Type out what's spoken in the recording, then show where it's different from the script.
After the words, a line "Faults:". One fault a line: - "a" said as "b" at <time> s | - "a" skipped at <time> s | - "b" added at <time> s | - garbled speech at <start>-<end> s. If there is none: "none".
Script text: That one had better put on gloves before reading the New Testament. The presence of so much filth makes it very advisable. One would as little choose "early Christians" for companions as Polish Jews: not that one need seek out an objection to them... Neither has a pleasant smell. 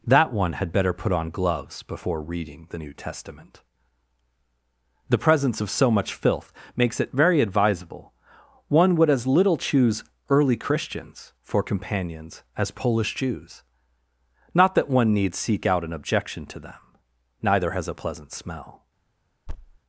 That one had better put on gloves before reading the New Testament. The presence of so much filth makes it very advisable. One would as little choose "early Christians" for companions as Polish Jews: not that one need seek out an objection to them... Neither has a pleasant smell.
Faults:
none